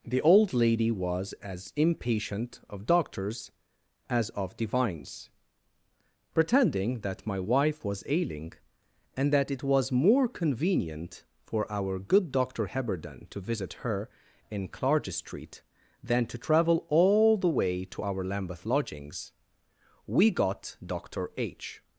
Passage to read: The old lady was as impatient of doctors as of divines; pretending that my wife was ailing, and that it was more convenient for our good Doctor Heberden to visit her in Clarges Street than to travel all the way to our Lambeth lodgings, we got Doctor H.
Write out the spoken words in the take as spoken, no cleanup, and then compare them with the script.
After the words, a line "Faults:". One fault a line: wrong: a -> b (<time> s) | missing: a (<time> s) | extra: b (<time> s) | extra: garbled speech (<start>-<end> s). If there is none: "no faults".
The old lady was as impatient of doctors as of divines; pretending that my wife was ailing, and that it was more convenient for our good Doctor Heberden to visit her in Clarges Street than to travel all the way to our Lambeth lodgings, we got Doctor H.
Faults:
no faults